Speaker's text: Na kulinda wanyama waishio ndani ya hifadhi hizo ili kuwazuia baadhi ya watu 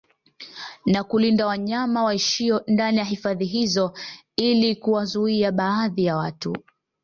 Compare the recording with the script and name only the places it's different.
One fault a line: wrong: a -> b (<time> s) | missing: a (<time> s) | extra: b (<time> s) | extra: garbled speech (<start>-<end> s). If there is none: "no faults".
no faults